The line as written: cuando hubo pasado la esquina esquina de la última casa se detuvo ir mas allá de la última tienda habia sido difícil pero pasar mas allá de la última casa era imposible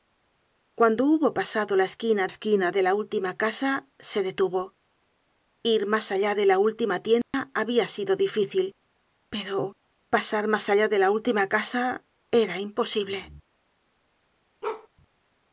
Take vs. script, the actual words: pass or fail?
pass